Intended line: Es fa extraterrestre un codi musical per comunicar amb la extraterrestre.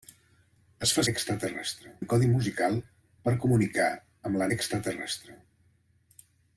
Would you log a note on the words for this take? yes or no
no